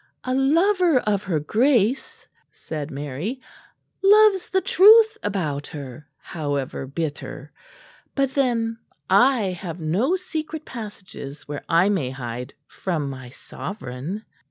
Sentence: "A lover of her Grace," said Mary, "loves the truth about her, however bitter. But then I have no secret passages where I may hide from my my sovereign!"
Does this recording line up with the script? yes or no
no